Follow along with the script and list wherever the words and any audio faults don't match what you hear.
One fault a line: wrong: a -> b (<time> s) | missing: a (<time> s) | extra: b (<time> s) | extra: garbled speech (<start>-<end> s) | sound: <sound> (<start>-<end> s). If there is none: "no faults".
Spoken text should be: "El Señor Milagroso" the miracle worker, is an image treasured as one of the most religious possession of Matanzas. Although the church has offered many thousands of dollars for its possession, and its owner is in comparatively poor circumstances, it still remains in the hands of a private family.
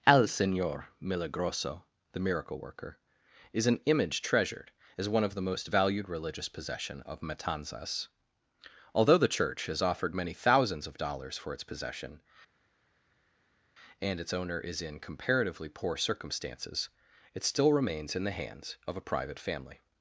extra: valued (5.7 s)